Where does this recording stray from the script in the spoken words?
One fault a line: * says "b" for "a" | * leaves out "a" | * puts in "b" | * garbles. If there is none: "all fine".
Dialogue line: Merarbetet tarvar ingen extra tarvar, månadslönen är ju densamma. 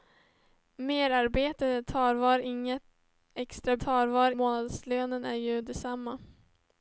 all fine